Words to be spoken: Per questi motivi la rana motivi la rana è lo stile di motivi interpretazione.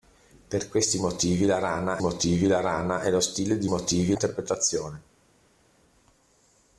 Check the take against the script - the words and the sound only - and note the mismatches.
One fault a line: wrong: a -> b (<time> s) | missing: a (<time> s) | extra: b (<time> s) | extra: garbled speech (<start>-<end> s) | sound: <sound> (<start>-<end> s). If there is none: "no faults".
no faults